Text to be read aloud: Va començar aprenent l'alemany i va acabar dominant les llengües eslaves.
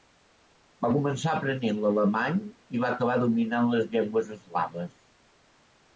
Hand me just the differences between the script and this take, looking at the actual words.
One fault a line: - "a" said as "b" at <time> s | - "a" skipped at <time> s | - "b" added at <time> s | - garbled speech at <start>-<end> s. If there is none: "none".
none